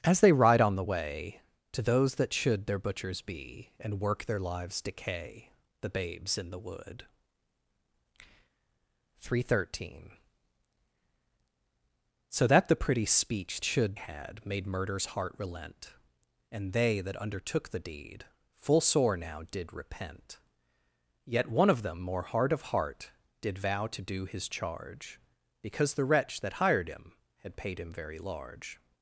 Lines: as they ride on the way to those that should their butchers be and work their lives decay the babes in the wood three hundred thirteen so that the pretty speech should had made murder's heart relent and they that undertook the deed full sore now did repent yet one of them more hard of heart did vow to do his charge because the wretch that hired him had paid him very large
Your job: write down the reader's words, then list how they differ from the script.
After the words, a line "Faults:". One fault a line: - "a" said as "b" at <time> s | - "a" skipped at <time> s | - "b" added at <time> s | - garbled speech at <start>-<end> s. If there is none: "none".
as they ride on the way to those that should their butchers be and work their lives decay the babes in the wood three hundred thirteen so that the pretty speech should had made murder's heart relent and they that undertook the deed full sore now did repent yet one of them more hard of heart did vow to do his charge because the wretch that hired him had paid him very large
Faults:
none